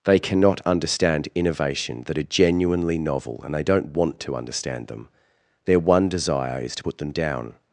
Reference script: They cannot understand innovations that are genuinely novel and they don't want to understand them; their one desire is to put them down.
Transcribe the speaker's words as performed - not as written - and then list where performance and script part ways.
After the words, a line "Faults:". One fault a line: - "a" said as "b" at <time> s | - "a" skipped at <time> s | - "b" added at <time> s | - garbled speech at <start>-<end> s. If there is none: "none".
They cannot understand innovation that are genuinely novel and they don't want to understand them; their one desire is to put them down.
Faults:
- "innovations" said as "innovation" at 1.4 s